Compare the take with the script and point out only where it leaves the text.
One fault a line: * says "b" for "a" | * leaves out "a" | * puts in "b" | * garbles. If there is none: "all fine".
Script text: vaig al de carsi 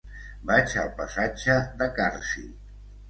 * puts in "passatge"